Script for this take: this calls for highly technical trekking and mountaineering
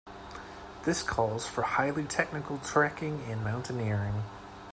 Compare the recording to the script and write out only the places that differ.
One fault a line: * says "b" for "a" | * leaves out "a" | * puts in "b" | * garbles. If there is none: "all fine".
all fine